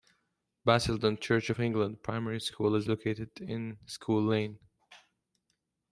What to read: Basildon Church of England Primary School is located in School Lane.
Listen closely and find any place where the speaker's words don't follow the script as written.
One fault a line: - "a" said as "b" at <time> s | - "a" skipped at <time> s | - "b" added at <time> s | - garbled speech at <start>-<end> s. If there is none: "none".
none